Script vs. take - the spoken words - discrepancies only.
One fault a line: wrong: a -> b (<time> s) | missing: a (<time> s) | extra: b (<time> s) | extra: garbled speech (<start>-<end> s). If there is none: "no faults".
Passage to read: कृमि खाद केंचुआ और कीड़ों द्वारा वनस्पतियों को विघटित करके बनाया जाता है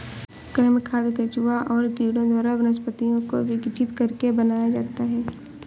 no faults